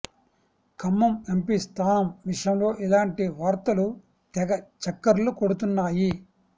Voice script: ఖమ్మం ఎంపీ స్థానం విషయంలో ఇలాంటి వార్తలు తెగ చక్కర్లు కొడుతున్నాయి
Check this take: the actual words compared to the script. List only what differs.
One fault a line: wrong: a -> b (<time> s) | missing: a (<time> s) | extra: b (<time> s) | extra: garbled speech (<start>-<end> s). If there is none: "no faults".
no faults